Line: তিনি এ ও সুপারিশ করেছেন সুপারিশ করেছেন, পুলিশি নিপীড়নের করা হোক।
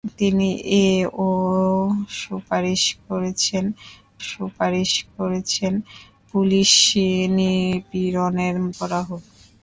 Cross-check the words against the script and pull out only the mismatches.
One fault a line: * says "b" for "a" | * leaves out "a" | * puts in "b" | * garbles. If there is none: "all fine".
all fine